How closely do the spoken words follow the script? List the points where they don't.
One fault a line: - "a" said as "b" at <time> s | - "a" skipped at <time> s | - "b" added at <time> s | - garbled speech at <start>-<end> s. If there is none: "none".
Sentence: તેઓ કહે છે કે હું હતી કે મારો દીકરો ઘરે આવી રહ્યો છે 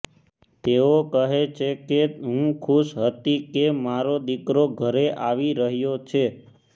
- "ખુશ" added at 2.6 s